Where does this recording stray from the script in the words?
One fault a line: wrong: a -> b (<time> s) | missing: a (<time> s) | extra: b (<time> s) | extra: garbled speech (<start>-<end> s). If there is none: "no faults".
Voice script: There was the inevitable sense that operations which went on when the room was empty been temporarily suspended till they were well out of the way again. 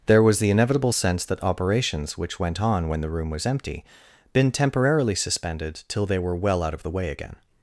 no faults